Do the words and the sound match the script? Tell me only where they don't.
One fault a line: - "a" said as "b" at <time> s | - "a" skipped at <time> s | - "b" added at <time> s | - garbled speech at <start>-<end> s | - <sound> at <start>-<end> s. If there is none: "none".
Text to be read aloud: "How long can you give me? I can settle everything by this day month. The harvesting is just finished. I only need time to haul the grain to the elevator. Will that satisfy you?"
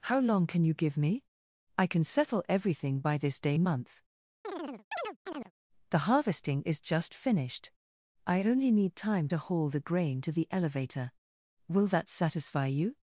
- chirp at 4.4-5.5 s